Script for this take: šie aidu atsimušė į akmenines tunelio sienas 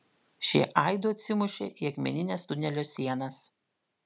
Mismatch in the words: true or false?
false